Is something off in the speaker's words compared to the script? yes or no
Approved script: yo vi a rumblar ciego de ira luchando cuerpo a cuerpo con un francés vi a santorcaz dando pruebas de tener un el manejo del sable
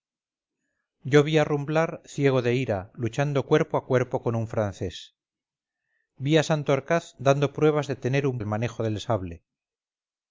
no